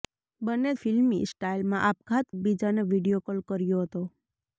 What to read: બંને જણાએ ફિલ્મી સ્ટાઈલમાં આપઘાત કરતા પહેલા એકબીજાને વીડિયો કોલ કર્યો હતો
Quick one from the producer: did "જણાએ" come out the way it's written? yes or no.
no